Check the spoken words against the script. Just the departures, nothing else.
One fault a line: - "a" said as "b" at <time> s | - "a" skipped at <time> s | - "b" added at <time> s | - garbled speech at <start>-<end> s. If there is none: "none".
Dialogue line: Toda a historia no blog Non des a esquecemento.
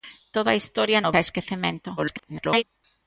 - "blog Non des" skipped at 1.1 s
- garbled speech at 2.0-2.6 s